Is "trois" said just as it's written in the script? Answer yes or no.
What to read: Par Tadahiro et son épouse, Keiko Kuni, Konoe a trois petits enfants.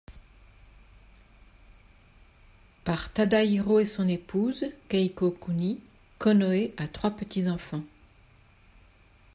yes